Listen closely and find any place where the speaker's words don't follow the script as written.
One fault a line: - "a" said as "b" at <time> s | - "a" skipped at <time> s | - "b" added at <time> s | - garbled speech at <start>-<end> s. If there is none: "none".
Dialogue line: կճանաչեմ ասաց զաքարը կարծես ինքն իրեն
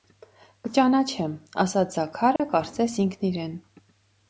none